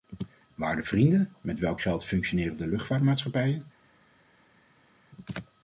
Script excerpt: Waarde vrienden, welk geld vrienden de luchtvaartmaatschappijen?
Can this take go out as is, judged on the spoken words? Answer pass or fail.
fail